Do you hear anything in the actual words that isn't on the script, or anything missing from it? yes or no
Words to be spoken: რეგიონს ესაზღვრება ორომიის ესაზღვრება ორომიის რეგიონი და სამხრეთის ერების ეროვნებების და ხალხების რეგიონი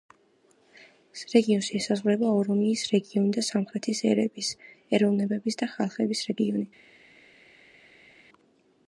yes